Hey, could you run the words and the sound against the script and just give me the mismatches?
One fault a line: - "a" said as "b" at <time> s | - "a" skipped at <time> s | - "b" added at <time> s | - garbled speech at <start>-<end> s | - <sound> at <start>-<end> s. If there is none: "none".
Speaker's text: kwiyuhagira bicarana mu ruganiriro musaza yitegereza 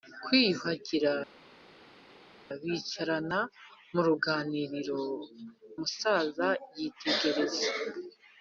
none